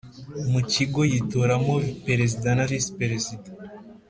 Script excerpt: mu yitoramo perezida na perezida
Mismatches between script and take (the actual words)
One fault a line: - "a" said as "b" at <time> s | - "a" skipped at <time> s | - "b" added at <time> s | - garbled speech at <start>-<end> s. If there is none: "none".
- "kigo" added at 0.7 s
- "visi" added at 2.7 s